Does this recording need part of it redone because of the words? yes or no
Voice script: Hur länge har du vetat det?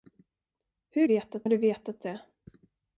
yes